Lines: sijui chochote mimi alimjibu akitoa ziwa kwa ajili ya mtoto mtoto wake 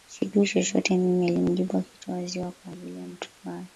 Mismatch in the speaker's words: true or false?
true